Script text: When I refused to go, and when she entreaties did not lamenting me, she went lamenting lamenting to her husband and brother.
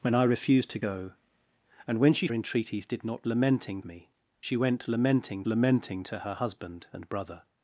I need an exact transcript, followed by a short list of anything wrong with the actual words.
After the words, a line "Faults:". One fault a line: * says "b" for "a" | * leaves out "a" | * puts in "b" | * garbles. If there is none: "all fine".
When I refused to go, and when she entreaties did not lamenting me, she went lamenting lamenting to her husband and brother.
Faults:
all fine